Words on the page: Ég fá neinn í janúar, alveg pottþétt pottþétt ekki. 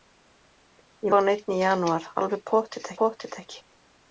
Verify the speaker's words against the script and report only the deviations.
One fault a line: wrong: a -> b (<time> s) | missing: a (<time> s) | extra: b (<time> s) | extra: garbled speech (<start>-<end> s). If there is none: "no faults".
no faults